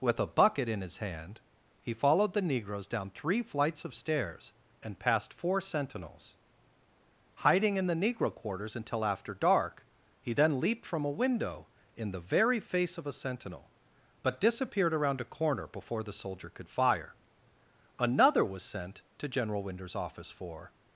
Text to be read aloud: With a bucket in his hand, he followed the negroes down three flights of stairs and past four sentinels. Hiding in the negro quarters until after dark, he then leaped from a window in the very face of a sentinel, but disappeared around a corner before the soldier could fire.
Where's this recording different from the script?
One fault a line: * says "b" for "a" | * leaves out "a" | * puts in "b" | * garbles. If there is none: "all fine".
* puts in "Another was sent to General Winder's office for"